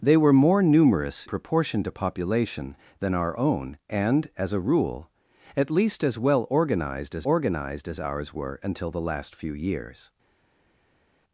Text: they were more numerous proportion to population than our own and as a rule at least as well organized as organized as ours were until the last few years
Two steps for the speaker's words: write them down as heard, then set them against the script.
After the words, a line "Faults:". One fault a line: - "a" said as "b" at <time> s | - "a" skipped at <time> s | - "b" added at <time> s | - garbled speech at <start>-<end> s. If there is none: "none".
they were more numerous proportion to population than our own and as a rule at least as well organized as organized as ours were until the last few years
Faults:
none